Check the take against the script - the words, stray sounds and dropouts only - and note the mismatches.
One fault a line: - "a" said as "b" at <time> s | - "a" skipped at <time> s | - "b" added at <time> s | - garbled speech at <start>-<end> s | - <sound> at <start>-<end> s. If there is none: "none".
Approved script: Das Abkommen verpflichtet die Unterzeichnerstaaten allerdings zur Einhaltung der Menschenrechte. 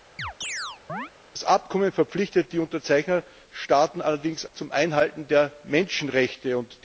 - chirp at 0.2-1.1 s